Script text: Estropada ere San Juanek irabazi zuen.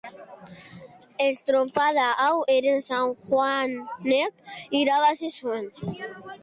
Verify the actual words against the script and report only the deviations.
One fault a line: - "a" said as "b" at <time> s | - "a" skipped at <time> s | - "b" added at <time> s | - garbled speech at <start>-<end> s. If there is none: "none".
- "hau" added at 2.2 s